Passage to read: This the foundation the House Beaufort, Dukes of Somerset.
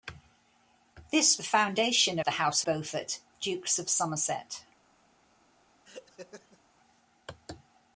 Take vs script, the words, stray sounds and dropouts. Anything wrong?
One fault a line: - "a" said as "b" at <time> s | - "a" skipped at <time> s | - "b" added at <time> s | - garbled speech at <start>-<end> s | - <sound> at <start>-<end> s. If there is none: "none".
- laugh at 5.8-6.6 s